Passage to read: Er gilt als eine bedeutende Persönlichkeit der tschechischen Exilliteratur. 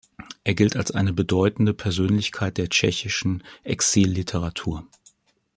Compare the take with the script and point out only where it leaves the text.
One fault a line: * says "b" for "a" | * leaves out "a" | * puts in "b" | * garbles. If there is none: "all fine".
all fine